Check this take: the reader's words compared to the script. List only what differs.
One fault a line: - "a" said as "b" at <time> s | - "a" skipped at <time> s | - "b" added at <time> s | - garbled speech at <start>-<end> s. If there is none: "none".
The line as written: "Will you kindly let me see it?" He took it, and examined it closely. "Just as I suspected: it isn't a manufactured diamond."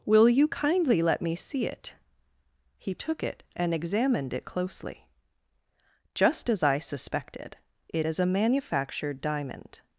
- "isn't" said as "is" at 8.1 s